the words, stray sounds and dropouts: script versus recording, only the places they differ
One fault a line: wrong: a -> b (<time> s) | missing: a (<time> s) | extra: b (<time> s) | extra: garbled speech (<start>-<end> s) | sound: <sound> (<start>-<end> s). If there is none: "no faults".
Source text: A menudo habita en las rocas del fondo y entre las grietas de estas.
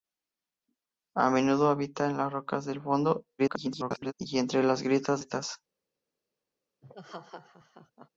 extra: garbled speech (3.4-4.1 s)
missing: de (5.2 s)
sound: laugh (6.8-8.1 s)